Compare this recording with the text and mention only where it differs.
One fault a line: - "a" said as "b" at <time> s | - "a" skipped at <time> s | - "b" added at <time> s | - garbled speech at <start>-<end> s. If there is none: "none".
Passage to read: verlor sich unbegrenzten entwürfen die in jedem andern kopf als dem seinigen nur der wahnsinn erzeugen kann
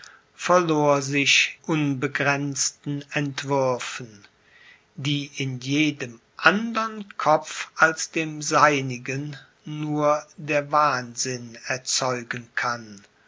none